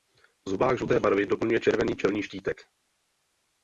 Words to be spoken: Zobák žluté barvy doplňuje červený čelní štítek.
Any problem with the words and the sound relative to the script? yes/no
no